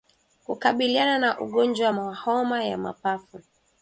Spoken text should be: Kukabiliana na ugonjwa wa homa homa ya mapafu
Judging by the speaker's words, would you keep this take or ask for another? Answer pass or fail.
fail